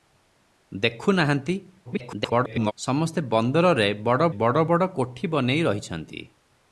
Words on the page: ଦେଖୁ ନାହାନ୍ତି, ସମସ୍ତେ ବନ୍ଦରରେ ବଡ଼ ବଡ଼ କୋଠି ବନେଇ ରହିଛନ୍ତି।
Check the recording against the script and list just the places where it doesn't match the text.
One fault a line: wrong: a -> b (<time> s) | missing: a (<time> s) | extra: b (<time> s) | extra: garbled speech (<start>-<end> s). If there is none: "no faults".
extra: garbled speech (1.8-2.7 s)
extra: ବଡ଼ (4.6 s)